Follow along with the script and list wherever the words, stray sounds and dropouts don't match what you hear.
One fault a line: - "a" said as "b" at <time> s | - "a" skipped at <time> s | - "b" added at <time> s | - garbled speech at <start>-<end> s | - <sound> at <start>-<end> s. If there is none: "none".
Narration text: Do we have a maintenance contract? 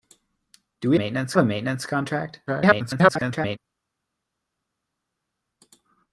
- "have" said as "maintenance" at 0.9 s
- garbled speech at 2.5-3.6 s